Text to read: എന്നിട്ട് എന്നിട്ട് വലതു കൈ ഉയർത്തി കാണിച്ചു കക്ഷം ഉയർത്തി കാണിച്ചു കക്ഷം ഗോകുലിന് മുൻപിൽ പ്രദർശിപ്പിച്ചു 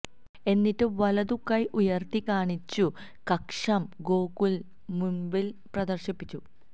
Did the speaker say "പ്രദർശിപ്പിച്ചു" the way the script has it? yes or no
yes